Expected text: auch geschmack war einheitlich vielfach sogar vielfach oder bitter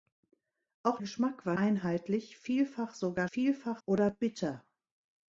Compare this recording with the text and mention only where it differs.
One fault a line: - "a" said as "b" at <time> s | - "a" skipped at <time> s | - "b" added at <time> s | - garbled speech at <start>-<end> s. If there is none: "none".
none